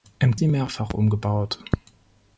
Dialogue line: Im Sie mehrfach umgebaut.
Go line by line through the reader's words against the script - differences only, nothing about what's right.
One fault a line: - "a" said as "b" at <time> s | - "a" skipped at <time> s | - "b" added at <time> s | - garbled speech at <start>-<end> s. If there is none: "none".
none